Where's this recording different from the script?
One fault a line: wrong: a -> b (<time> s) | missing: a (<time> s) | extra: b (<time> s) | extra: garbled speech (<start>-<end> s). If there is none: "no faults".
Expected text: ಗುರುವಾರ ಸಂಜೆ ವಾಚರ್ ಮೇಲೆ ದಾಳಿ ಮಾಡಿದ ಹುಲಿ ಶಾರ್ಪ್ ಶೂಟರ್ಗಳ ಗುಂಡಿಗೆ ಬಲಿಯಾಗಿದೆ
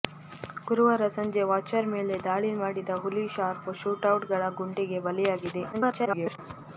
extra: garbled speech (5.7-6.4 s)